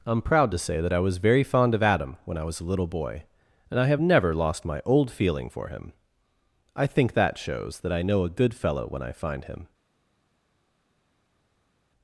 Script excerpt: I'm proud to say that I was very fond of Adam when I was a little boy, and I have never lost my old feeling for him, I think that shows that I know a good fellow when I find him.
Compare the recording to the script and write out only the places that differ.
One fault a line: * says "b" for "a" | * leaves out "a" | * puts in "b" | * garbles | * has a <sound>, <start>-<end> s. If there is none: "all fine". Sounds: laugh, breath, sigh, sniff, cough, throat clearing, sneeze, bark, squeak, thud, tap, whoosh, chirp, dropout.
all fine